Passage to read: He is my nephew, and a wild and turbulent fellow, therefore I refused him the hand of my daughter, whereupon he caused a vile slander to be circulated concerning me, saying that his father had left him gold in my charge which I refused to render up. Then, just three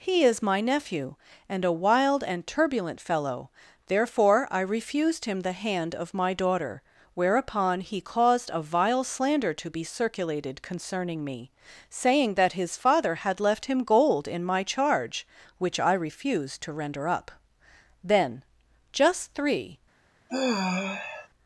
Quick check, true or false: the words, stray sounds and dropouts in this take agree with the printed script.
false